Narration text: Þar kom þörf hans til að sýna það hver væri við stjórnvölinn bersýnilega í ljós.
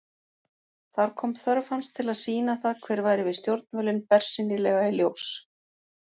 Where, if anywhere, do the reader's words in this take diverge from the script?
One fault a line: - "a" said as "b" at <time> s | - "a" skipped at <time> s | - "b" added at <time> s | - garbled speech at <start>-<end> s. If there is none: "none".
none